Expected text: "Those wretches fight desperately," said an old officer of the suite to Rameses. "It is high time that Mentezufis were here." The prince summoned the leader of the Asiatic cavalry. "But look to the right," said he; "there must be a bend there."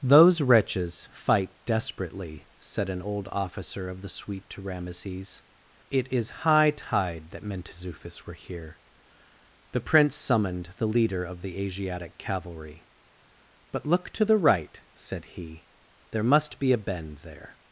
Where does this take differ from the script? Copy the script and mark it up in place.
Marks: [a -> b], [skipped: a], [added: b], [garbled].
"Those wretches fight desperately," said an old officer of the suite to Rameses. "It is high [time -> tide] that Mentezufis were here." The prince summoned the leader of the Asiatic cavalry. "But look to the right," said he; "there must be a bend there."